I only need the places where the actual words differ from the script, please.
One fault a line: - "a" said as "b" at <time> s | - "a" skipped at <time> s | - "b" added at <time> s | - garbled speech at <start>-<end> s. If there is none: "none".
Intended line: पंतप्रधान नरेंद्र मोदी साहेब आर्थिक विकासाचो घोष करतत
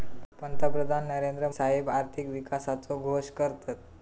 - "मोदी" skipped at 1.5 s